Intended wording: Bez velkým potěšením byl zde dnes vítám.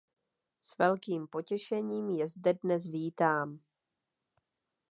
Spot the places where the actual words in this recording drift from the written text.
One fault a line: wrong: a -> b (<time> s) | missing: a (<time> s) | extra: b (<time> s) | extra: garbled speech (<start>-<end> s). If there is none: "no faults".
wrong: Bez -> S (0.6 s)
wrong: byl -> je (2.1 s)